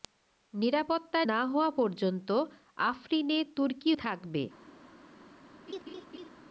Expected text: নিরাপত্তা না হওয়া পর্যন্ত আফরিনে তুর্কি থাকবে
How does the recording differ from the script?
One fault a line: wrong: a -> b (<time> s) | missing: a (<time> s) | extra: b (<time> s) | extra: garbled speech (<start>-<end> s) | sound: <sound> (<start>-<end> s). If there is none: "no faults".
sound: laugh (5.7-6.3 s)